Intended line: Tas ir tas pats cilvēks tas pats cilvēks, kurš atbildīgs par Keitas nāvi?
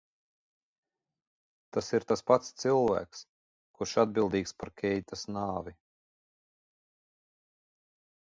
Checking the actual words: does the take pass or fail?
fail